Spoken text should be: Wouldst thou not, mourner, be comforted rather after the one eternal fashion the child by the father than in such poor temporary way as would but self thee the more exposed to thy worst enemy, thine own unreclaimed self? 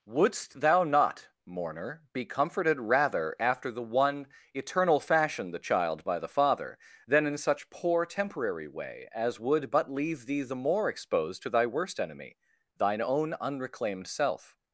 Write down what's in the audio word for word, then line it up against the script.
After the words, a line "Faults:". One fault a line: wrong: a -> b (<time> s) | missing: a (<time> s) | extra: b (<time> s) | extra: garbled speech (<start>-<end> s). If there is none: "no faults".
Wouldst thou not, mourner, be comforted rather after the one eternal fashion the child by the father than in such poor temporary way as would but leave thee the more exposed to thy worst enemy, thine own unreclaimed self?
Faults:
wrong: self -> leave (9.9 s)